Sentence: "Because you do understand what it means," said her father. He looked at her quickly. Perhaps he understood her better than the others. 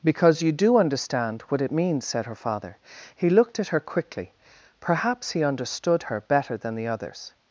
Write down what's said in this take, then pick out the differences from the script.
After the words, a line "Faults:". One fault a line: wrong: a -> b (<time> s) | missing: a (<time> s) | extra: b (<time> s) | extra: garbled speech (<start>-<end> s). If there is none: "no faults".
"Because you do understand what it means," said her father. He looked at her quickly. Perhaps he understood her better than the others.
Faults:
no faults